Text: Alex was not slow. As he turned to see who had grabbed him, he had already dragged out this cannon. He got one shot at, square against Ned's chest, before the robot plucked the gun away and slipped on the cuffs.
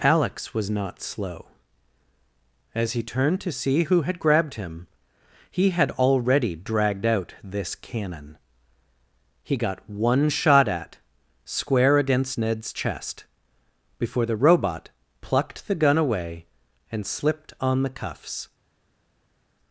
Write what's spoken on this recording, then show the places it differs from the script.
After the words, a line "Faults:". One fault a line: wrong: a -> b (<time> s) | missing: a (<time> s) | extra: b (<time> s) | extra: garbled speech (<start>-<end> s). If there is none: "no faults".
Alex was not slow. As he turned to see who had grabbed him, he had already dragged out this cannon. He got one shot at, square against Ned's chest, before the robot plucked the gun away and slipped on the cuffs.
Faults:
no faults